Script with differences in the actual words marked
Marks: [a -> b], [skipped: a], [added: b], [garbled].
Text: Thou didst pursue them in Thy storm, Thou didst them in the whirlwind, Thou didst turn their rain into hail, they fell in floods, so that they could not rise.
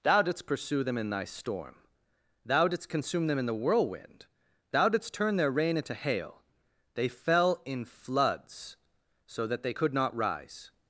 Thou didst pursue them in Thy storm, Thou didst [added: consume] them in the whirlwind, Thou didst turn their rain into hail, they fell in floods, so that they could not rise.